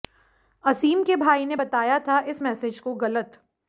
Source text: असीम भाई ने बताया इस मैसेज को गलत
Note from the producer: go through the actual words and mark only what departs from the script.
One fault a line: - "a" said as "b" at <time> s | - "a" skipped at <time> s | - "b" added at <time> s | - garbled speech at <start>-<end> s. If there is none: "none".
- "के" added at 1.0 s
- "था" added at 2.0 s